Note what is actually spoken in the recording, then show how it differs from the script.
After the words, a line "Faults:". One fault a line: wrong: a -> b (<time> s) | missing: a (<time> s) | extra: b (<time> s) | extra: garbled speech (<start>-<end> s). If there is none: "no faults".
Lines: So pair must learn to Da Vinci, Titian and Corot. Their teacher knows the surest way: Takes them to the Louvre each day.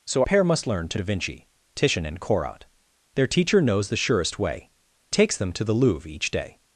So pair must learn to Da Vinci, Titian and Corot. Their teacher knows the surest way: Takes them to the Louvre each day.
Faults:
no faults